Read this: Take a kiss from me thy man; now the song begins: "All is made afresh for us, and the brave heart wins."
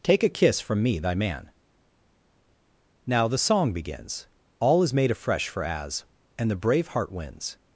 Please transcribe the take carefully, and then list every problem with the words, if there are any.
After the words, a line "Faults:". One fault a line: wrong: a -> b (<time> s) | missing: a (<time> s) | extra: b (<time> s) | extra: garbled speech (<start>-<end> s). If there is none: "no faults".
Take a kiss from me thy man; now the song begins: "All is made afresh for as, and the brave heart wins."
Faults:
wrong: us -> as (5.6 s)